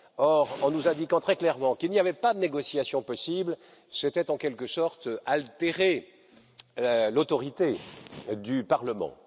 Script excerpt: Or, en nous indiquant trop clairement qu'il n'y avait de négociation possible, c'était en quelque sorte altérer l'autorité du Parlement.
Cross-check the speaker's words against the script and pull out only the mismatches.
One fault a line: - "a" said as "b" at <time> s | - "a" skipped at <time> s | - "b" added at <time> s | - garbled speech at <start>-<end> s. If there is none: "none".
- "trop" said as "très" at 1.2 s
- "pas" added at 2.1 s